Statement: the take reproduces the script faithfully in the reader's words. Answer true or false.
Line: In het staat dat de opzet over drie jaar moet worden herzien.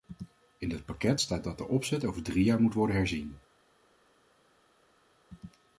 false